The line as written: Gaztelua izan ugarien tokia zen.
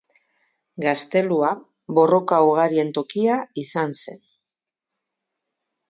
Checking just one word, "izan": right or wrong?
wrong